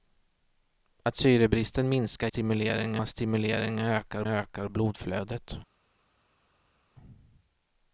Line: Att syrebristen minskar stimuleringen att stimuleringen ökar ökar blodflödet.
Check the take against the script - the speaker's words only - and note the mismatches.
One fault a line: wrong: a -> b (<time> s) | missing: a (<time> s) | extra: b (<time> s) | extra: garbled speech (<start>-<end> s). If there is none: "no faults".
no faults